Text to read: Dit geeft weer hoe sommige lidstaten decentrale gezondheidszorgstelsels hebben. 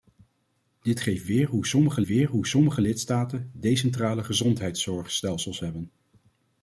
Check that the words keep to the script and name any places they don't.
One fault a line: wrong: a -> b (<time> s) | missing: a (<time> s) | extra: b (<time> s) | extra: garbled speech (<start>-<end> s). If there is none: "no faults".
extra: weer hoe sommige (2.1 s)